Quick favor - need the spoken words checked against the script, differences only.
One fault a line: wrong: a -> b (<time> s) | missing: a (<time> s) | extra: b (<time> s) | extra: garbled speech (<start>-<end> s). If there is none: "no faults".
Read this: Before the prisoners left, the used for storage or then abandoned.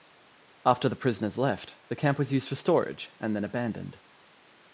wrong: Before -> After (0.7 s)
extra: camp was (1.9 s)
wrong: or -> and (3.2 s)